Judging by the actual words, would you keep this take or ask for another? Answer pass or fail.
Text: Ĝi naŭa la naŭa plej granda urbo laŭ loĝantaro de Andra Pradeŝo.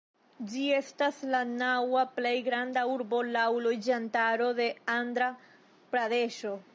fail